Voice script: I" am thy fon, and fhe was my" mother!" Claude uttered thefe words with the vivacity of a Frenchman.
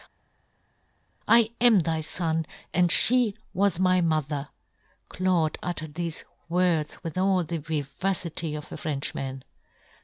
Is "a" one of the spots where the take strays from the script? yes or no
no